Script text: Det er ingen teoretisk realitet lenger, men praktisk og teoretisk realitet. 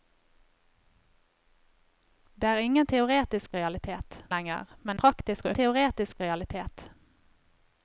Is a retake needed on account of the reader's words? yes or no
no